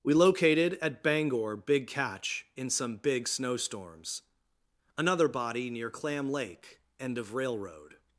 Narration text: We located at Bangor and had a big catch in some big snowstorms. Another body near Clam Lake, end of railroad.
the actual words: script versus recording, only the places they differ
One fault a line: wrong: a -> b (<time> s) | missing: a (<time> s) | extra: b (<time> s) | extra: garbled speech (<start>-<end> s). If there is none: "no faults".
missing: and had a (1.6 s)